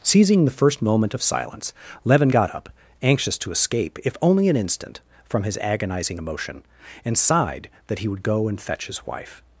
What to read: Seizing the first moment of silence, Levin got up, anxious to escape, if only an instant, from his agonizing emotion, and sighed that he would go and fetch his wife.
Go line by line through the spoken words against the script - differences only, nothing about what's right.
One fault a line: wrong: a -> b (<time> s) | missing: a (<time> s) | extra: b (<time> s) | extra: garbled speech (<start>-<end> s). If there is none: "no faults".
no faults